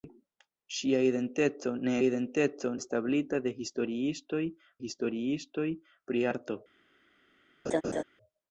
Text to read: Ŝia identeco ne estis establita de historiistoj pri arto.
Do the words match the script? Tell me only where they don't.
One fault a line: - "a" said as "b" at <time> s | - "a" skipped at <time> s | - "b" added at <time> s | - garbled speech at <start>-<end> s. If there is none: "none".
- "estis" said as "identeco" at 2.1 s
- "historiistoj" added at 4.8 s